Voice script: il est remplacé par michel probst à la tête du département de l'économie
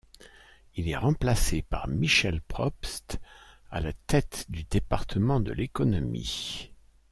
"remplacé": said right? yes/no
yes